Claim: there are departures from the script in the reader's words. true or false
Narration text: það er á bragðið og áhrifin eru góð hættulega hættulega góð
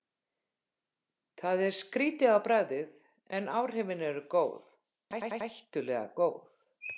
true